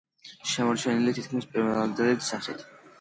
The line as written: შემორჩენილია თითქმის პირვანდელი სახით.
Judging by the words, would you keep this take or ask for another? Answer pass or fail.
pass